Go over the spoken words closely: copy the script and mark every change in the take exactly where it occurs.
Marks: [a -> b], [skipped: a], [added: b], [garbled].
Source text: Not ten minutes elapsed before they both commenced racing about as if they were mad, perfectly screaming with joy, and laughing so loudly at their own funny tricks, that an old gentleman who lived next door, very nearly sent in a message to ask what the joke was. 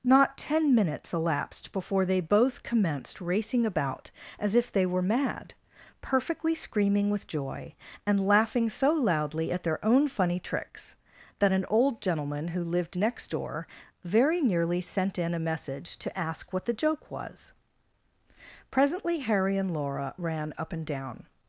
Not ten minutes elapsed before they both commenced racing about as if they were mad, perfectly screaming with joy, and laughing so loudly at their own funny tricks, that an old gentleman who lived next door, very nearly sent in a message to ask what the joke was. [added: Presently Harry and Laura ran up and down]